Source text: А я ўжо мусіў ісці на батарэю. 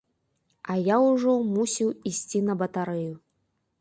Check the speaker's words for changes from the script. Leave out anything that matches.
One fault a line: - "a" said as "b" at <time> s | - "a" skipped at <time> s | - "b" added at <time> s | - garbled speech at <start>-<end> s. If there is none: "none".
none